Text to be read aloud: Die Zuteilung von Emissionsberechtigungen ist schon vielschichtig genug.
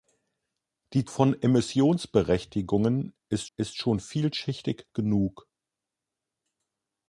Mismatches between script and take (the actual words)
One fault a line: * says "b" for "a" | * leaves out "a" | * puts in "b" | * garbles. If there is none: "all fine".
* leaves out "Zuteilung"
* puts in "ist"